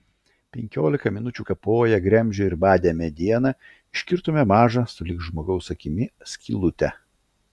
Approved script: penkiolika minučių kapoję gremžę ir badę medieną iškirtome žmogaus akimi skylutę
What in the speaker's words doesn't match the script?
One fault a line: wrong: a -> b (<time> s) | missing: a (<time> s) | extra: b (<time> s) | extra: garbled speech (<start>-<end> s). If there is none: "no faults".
extra: mažą sulig (4.5 s)